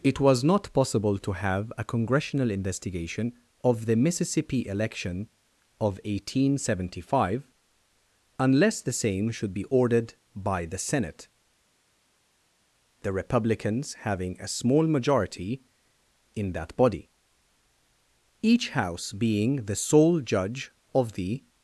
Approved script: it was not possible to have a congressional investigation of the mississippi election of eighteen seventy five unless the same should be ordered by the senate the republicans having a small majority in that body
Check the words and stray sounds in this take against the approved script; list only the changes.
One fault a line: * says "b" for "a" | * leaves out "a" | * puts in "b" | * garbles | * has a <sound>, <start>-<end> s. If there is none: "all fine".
* puts in "each house being the sole judge of the"